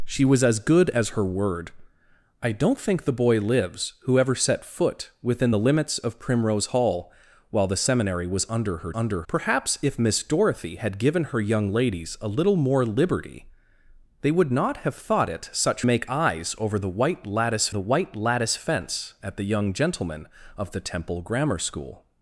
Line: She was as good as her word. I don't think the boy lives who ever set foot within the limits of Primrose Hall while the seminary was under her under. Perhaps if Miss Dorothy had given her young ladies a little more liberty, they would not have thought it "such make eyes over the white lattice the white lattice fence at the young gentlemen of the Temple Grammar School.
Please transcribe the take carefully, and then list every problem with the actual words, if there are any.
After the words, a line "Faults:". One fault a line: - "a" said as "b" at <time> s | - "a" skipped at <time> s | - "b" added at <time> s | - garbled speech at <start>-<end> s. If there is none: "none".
She was as good as her word. I don't think the boy lives who ever set foot within the limits of Primrose Hall while the seminary was under her under. Perhaps if Miss Dorothy had given her young ladies a little more liberty, they would not have thought it "such make eyes over the white lattice the white lattice fence at the young gentlemen of the Temple Grammar School.
Faults:
none